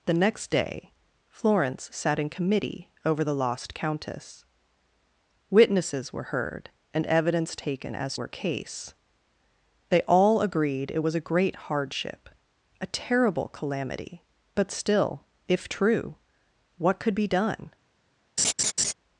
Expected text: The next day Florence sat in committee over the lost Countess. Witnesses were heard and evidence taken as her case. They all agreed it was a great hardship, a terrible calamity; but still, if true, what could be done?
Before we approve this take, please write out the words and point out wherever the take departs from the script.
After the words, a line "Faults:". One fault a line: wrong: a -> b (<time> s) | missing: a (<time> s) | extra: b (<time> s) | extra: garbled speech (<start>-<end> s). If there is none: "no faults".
The next day Florence sat in committee over the lost Countess. Witnesses were heard and evidence taken as her case. They all agreed it was a great hardship, a terrible calamity; but still, if true, what could be done?
Faults:
no faults